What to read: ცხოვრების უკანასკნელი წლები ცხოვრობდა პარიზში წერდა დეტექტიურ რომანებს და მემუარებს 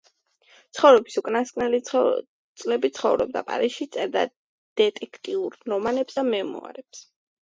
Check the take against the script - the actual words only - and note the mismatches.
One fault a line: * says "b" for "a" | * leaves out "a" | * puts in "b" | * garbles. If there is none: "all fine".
all fine